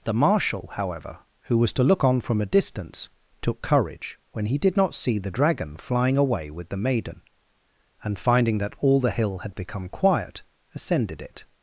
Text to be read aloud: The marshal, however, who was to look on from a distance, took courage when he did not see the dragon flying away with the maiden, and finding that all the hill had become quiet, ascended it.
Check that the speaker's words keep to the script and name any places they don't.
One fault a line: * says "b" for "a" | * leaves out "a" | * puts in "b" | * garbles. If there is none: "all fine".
all fine